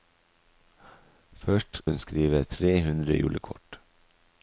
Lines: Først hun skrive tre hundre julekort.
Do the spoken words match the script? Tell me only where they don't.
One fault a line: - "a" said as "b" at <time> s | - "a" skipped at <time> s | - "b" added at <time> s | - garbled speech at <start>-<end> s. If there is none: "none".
none